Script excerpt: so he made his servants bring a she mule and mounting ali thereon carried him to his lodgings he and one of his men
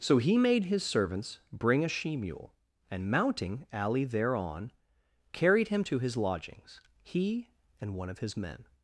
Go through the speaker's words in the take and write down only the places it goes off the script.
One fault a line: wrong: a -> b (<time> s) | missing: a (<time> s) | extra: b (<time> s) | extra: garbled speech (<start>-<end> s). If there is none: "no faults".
no faults